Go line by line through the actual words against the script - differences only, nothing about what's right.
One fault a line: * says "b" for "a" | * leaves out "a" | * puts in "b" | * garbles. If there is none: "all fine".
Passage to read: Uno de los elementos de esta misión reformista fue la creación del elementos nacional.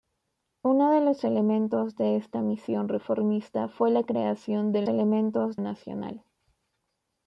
all fine